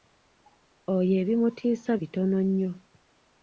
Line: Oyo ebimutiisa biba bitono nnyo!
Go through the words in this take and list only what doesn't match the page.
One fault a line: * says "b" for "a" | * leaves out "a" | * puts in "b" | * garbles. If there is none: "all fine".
* leaves out "biba"